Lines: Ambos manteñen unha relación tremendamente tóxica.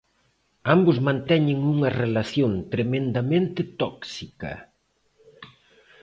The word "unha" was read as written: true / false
true